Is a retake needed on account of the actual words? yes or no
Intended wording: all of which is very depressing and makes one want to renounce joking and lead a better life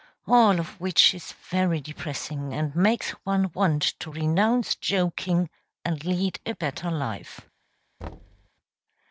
no